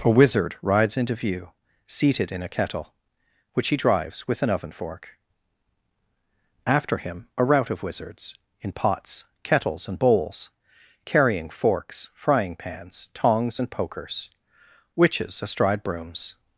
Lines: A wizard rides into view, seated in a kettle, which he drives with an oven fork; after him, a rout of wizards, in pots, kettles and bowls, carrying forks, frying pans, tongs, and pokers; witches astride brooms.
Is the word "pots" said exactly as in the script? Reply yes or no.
yes